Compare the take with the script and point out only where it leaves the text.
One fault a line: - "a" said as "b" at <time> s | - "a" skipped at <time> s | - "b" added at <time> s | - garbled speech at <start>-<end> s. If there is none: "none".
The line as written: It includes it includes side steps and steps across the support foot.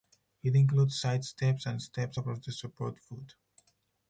- "it includes" skipped at 1.0 s